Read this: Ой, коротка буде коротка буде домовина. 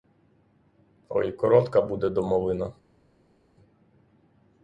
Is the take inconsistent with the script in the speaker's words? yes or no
yes